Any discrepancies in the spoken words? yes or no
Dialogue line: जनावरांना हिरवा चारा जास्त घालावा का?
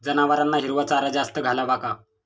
no